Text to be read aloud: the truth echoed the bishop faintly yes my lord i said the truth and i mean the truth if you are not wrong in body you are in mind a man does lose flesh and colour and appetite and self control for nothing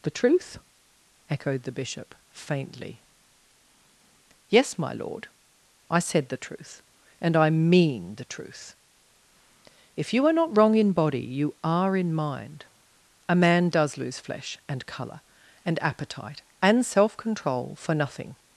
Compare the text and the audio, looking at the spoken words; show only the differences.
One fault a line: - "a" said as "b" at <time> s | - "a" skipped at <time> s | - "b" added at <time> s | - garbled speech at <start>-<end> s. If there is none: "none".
none